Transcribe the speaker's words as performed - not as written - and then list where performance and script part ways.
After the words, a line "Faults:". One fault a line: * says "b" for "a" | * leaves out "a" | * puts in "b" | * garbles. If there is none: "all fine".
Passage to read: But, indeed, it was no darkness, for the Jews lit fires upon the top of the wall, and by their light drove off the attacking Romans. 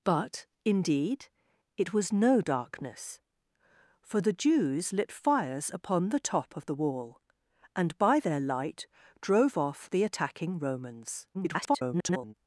But, indeed, it was no darkness, for the Jews lit fires upon the top of the wall, and by their light drove off the attacking Romans. [garbled]
Faults:
* garbles